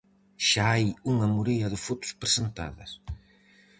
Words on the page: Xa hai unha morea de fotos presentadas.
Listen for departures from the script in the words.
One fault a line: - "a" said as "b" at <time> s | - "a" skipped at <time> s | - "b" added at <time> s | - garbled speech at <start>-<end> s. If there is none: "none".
none